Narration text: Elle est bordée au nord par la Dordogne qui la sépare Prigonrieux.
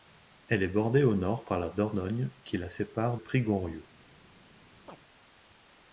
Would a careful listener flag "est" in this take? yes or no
no